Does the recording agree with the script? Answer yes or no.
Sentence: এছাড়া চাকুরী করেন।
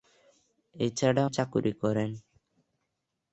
yes